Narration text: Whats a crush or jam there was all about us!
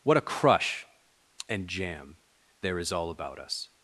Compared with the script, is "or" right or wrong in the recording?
wrong